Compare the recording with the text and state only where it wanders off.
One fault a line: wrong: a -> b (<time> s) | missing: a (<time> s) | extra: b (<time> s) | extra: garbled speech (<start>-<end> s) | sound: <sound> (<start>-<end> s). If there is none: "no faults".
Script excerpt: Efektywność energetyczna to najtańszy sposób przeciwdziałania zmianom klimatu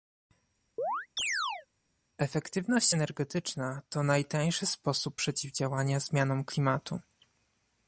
sound: chirp (0.8-1.7 s)